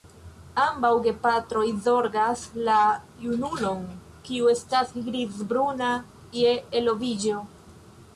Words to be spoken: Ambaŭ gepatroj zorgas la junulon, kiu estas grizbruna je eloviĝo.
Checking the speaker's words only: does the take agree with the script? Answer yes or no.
yes